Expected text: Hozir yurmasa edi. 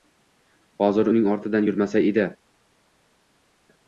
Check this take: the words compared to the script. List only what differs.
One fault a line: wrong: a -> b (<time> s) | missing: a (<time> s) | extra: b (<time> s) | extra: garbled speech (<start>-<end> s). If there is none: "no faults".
extra: uning ortidan (1.1 s)